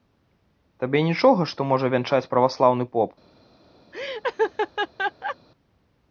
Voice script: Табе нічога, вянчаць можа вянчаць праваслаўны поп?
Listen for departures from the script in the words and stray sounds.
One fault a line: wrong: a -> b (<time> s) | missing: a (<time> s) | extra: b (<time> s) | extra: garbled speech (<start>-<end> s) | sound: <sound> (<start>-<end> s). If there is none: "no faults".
wrong: вянчаць -> што (1.5 s)
sound: laugh (3.9-5.4 s)